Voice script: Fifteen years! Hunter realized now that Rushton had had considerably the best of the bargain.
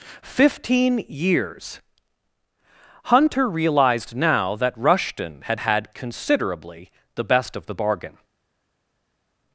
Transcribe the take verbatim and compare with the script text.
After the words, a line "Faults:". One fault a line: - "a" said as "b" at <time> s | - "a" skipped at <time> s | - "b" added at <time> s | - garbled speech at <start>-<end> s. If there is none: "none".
Fifteen years! Hunter realized now that Rushton had had considerably the best of the bargain.
Faults:
none